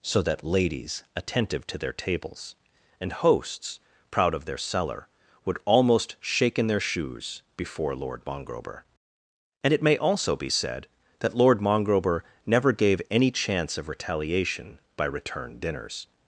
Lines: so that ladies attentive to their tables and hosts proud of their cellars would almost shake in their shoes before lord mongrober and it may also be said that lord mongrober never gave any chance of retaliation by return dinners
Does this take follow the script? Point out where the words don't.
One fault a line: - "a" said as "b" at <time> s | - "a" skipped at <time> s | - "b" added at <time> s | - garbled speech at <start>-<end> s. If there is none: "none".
- "cellars" said as "cellar" at 4.6 s